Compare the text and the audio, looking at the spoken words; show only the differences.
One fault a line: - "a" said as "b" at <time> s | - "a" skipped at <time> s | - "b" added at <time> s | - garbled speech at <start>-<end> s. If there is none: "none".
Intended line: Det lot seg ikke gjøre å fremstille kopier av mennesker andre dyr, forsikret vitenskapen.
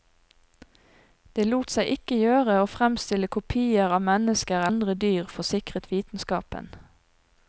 none